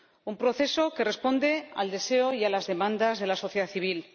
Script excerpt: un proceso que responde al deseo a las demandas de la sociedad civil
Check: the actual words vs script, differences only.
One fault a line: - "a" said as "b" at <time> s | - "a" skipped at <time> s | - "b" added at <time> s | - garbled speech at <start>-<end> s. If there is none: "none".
- "y" added at 2.3 s